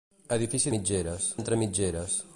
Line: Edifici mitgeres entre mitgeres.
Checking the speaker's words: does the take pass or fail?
pass